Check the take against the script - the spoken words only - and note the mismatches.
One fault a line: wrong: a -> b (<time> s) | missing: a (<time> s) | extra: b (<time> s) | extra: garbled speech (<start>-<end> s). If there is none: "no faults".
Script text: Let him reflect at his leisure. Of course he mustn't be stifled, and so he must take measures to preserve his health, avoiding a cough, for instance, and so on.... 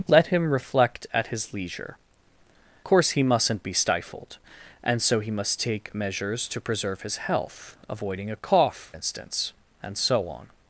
missing: Of (2.0 s)
missing: for (8.9 s)